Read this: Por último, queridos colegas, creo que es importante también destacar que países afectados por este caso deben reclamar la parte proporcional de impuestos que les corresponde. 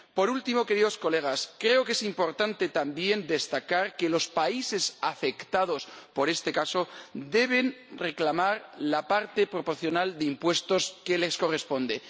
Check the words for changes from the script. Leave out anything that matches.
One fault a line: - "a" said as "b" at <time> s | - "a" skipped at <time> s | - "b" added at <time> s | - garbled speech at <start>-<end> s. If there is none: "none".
- "los" added at 4.1 s